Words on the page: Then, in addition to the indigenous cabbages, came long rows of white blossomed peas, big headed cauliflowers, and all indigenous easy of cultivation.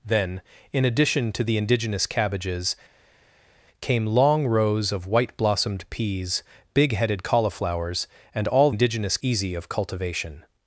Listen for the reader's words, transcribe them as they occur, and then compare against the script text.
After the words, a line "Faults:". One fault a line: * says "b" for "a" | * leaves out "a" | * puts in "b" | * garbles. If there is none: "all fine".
Then, in addition to the indigenous cabbages, came long rows of white blossomed peas, big headed cauliflowers, and all indigenous easy of cultivation.
Faults:
all fine